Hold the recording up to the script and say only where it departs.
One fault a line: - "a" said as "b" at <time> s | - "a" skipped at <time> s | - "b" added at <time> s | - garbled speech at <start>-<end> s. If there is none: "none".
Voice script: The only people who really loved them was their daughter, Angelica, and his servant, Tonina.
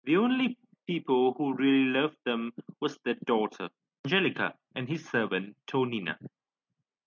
none